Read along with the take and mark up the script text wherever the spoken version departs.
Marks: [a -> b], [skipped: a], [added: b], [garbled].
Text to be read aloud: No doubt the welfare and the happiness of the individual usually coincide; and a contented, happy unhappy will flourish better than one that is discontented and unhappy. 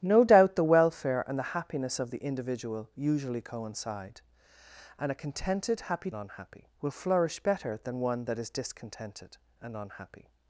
No doubt the welfare and the happiness of the individual usually coincide; and a contented, happy unhappy will flourish better than one that is discontented and unhappy.